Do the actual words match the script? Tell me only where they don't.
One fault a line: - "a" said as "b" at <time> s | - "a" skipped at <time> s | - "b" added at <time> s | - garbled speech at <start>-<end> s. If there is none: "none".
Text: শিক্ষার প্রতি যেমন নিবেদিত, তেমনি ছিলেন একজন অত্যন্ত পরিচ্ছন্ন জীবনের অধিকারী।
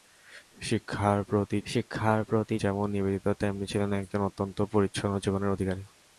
- "শিক্ষার প্রতি" added at 1.7 s